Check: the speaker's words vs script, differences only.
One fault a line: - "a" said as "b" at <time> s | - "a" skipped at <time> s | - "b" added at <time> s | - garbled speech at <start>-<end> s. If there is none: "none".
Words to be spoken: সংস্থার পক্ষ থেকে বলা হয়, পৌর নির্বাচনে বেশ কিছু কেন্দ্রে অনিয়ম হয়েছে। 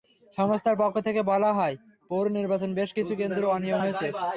none